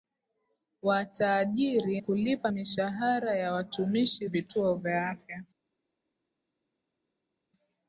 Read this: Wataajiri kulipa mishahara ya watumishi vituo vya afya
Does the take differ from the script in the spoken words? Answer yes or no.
no